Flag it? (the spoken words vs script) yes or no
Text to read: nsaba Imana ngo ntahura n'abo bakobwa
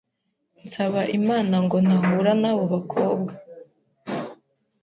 no